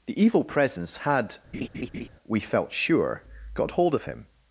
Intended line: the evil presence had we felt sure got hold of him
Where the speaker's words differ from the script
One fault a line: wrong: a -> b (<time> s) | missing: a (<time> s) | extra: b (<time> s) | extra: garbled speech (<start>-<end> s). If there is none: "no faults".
no faults